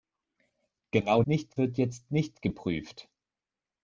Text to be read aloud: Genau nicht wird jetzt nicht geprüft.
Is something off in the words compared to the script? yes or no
no